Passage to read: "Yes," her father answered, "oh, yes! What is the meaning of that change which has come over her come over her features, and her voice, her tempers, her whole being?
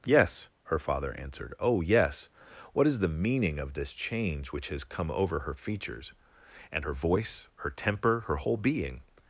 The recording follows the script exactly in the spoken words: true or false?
false